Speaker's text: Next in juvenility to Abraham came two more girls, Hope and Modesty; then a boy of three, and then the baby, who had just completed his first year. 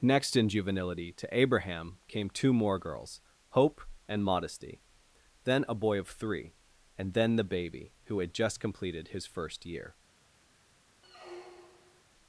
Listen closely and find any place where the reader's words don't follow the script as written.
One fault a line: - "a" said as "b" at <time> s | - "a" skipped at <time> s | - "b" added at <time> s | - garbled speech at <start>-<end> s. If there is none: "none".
none